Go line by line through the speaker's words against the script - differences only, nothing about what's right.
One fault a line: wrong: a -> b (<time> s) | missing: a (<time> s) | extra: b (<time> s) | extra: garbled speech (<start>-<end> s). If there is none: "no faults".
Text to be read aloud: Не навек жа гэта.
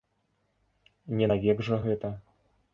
no faults